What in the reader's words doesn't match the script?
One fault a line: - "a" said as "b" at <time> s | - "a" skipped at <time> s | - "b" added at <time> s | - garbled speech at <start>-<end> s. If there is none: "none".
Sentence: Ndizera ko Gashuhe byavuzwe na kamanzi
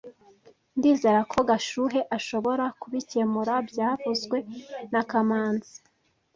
- "ashobora kubikemura" added at 2.2 s